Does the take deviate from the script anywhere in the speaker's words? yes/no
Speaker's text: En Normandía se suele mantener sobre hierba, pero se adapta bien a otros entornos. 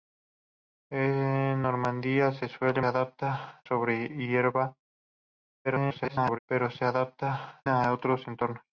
yes